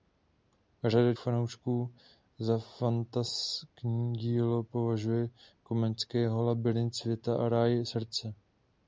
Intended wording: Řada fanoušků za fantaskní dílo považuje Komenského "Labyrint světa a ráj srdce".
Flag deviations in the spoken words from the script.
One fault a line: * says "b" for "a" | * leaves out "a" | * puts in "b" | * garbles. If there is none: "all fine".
all fine